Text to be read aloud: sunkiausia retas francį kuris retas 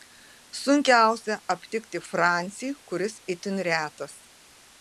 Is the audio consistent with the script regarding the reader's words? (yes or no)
no